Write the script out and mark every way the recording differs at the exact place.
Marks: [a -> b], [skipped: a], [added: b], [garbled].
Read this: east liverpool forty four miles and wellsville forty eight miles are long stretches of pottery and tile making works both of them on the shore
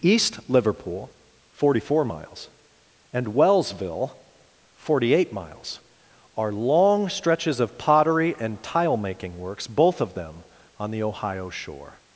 east liverpool forty four miles and wellsville forty eight miles are long stretches of pottery and tile making works both of them on the [added: ohio] shore